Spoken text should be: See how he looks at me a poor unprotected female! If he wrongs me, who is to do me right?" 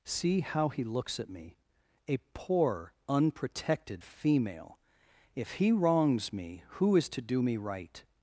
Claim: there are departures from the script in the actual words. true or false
false